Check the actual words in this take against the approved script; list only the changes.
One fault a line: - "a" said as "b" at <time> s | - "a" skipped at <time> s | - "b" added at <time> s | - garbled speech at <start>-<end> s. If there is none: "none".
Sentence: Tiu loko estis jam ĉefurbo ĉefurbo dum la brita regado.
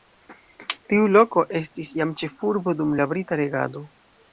- "ĉefurbo" skipped at 2.8 s